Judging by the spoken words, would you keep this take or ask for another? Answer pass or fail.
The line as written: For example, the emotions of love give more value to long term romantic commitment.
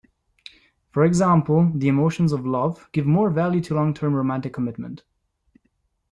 pass